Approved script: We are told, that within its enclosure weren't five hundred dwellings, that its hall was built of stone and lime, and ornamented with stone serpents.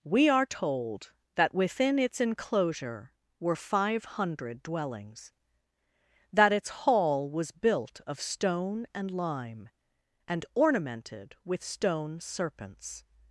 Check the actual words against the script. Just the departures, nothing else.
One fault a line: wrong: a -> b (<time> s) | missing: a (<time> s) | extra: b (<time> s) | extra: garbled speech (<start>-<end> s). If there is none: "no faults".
wrong: weren't -> were (3.4 s)